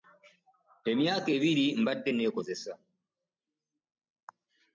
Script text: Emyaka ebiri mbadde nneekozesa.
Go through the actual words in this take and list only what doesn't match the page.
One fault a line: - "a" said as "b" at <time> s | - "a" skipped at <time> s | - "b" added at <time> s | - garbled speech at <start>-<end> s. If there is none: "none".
none